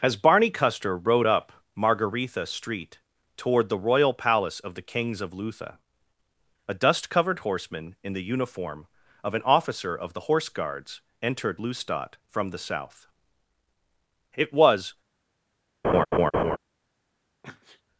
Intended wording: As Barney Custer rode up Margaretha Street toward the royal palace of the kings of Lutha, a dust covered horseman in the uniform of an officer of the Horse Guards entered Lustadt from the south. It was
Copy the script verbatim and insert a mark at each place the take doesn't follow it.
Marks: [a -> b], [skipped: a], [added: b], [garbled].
As Barney Custer rode up Margaretha Street toward the royal palace of the kings of Lutha, a dust covered horseman in the uniform of an officer of the Horse Guards entered Lustadt from the south. It was